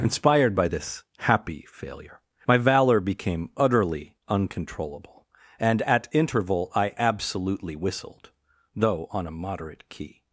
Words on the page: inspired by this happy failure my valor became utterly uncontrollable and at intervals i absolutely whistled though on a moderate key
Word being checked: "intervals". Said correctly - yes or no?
no